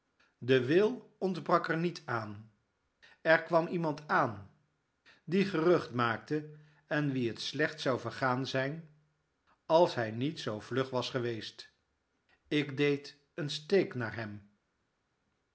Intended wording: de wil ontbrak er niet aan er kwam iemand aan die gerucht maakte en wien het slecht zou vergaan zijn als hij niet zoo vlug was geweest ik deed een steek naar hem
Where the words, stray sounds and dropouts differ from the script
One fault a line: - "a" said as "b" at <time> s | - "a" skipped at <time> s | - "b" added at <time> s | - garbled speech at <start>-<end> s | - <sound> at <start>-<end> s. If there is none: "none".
none